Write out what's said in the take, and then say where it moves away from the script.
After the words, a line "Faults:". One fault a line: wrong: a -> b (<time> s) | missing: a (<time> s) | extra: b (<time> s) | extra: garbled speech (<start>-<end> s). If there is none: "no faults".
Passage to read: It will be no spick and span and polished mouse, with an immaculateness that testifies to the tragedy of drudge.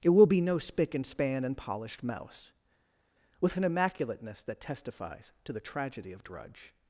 It will be no spick and span and polished mouse, with an immaculateness that testifies to the tragedy of drudge.
Faults:
no faults